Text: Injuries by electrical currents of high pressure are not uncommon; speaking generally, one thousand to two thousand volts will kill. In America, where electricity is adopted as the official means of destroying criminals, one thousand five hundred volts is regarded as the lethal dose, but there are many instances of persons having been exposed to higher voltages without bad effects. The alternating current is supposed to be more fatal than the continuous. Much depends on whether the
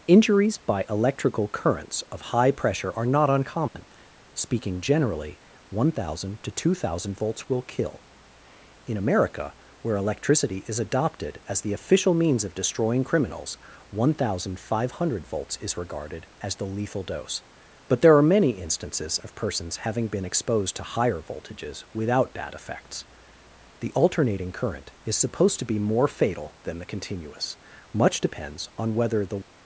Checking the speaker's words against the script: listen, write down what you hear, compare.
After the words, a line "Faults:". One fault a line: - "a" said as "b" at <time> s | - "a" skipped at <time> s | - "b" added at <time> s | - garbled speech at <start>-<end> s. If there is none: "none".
Injuries by electrical currents of high pressure are not uncommon; speaking generally, one thousand to two thousand volts will kill. In America, where electricity is adopted as the official means of destroying criminals, one thousand five hundred volts is regarded as the lethal dose, but there are many instances of persons having been exposed to higher voltages without bad effects. The alternating current is supposed to be more fatal than the continuous. Much depends on whether the
Faults:
none